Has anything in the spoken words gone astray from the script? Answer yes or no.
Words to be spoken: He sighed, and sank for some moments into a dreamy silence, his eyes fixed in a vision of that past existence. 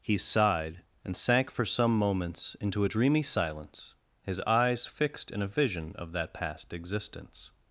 no